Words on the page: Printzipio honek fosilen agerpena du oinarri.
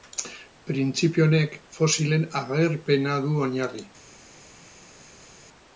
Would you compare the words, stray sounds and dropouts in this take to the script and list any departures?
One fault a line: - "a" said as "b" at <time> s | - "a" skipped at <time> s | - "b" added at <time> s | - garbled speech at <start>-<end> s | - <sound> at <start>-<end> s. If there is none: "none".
none